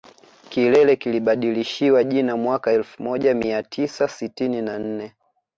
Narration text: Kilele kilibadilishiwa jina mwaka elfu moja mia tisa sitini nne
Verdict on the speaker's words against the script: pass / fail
fail